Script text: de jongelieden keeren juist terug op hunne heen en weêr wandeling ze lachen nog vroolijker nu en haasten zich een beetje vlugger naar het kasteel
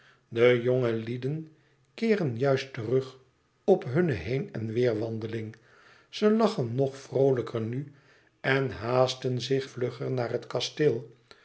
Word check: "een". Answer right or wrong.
wrong